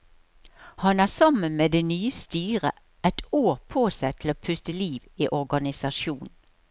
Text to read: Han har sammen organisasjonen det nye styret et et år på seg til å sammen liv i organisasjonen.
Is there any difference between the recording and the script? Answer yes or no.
yes